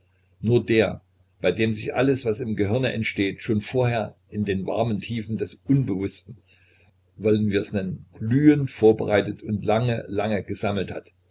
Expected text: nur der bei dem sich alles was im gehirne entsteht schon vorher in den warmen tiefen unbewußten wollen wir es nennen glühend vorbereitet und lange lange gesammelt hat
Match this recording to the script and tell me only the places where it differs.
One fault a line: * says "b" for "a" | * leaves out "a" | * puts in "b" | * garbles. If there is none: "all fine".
* puts in "des"